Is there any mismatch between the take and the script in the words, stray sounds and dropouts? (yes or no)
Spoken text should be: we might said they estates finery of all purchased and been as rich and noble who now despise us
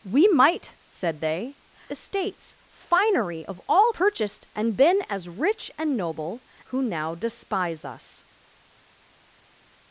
no